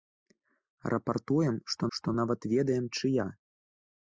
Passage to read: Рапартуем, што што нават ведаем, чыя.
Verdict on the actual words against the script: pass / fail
pass